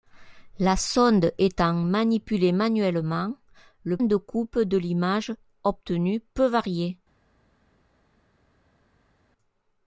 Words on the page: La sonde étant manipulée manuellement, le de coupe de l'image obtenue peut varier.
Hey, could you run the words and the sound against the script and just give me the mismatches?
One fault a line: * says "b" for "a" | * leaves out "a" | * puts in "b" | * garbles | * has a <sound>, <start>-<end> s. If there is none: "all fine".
all fine